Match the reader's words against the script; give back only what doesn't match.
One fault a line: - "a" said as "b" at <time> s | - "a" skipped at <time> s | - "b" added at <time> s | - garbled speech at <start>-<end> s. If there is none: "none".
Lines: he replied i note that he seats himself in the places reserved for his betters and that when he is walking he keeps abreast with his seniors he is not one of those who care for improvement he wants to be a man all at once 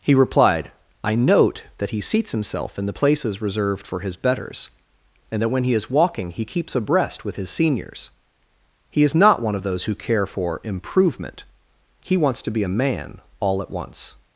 none